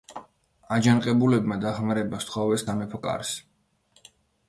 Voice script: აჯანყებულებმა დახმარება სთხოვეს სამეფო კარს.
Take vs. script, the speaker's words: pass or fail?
pass